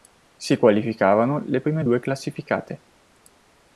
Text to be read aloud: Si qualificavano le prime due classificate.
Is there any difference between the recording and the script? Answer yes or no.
no